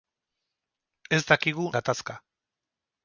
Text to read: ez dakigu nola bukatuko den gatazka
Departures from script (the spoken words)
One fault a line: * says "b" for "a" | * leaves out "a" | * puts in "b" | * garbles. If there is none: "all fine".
* leaves out "nola bukatuko den"